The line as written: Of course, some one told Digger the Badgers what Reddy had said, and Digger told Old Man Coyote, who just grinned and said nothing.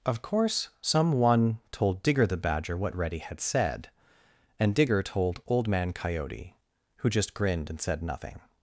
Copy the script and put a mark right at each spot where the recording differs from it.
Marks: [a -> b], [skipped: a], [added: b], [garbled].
Of course, some one told Digger the [Badgers -> Badger] what Reddy had said, and Digger told Old Man Coyote, who just grinned and said nothing.